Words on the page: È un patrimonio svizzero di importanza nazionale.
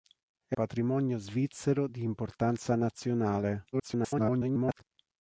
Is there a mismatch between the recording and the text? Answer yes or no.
yes